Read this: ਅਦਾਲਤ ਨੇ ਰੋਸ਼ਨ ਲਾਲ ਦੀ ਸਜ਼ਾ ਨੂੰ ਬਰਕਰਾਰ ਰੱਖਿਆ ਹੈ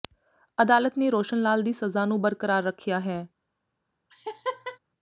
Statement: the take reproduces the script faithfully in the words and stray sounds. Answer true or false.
false